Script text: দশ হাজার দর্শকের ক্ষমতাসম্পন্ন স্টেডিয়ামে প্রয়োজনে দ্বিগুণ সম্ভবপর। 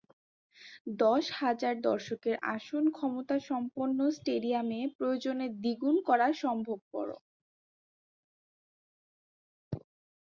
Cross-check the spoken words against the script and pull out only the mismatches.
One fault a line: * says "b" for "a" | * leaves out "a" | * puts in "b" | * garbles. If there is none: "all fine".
* puts in "আসন"
* puts in "করা"